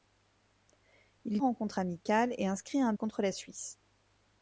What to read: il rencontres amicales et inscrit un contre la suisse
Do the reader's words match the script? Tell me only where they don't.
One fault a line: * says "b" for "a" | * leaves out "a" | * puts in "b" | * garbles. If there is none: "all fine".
all fine